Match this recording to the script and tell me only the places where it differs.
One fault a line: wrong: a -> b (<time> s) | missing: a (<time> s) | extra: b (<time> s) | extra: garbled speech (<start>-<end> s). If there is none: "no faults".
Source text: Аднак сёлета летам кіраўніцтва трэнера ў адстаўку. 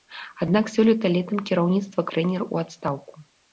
no faults